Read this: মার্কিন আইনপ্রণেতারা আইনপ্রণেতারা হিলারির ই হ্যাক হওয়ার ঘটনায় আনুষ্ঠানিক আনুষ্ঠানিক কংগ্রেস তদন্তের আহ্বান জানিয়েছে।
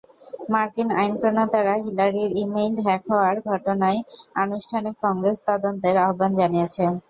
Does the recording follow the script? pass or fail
fail